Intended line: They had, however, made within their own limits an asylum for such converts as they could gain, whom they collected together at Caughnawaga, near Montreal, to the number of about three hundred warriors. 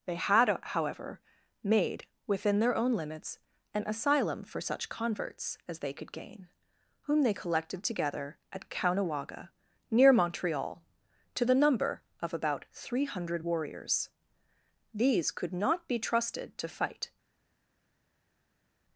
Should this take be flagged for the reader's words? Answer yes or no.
yes